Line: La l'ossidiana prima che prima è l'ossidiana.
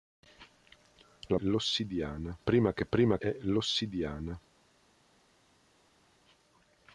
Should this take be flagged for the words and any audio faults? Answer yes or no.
no